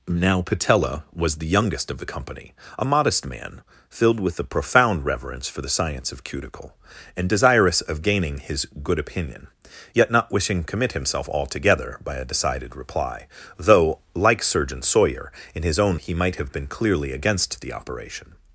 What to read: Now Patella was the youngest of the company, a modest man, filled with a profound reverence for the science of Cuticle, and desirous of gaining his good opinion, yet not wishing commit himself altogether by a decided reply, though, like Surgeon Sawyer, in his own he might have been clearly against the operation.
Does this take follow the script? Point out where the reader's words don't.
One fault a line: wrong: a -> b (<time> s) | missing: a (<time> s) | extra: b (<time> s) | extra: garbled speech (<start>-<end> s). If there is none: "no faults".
no faults